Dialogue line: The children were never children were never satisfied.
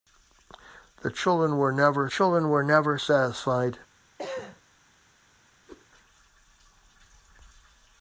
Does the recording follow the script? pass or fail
pass